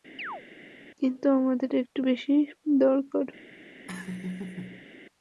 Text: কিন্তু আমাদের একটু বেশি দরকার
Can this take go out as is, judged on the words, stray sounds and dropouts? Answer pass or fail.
fail